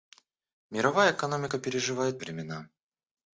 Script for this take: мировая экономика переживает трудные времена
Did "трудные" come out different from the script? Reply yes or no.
yes